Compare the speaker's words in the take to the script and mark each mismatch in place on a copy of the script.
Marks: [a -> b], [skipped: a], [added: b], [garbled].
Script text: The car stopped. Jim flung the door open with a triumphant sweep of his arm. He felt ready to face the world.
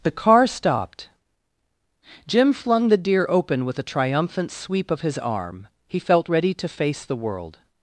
The car stopped. Jim flung the [door -> deer] open with a triumphant sweep of his arm. He felt ready to face the world.